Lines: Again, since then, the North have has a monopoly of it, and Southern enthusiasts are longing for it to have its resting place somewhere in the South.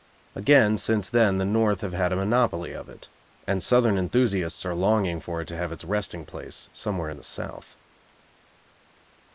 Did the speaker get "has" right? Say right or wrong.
wrong